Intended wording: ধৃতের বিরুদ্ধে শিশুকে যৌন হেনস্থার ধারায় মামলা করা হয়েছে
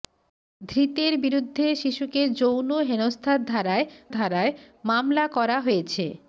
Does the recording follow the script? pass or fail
fail